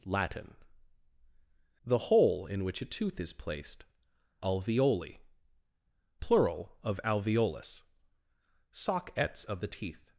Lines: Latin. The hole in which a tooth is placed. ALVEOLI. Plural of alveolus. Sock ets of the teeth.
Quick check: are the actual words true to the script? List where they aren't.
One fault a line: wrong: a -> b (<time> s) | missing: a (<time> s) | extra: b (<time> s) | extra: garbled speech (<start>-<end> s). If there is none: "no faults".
no faults